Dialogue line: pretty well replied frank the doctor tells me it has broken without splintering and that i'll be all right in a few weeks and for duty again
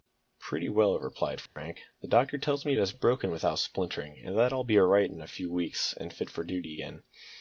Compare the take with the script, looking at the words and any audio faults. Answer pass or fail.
fail